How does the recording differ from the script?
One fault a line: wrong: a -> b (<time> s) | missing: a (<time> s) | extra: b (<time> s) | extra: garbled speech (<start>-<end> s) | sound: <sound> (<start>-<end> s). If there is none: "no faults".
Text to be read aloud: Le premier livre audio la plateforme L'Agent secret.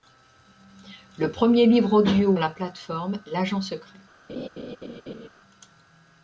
sound: laugh (4.3-5.3 s)